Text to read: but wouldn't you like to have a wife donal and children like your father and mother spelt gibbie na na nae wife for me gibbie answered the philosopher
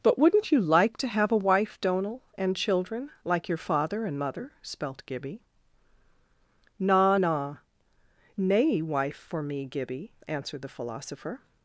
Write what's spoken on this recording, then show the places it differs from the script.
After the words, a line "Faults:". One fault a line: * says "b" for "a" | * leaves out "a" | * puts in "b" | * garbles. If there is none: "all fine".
but wouldn't you like to have a wife donal and children like your father and mother spelt gibbie na na nae wife for me gibbie answered the philosopher
Faults:
all fine